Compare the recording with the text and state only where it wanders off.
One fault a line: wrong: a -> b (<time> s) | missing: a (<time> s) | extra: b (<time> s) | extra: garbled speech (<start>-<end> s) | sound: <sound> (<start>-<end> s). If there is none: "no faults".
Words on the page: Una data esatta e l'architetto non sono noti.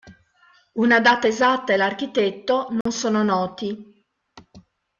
sound: dropout (2.8-2.9 s)